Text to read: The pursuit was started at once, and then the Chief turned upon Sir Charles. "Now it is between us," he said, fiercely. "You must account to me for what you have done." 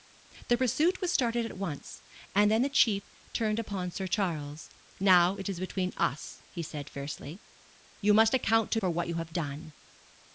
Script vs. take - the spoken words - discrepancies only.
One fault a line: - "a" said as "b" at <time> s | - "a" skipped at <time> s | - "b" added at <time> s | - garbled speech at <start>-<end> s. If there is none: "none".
- "me" skipped at 8.8 s